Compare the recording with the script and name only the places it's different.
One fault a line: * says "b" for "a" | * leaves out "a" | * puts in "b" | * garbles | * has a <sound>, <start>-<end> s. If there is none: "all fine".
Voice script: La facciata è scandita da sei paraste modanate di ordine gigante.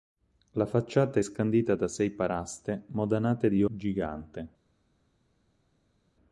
* leaves out "ordine"